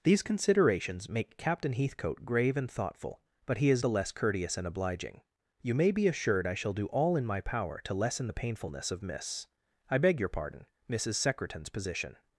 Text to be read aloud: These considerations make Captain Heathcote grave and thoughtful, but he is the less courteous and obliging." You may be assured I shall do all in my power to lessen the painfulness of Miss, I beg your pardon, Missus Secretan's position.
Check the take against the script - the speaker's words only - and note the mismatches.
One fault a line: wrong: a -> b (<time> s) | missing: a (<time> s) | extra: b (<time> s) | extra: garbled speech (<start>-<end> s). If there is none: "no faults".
no faults